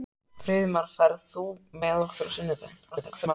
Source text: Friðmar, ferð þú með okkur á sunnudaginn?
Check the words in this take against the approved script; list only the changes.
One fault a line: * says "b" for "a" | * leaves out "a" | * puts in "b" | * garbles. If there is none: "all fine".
* garbles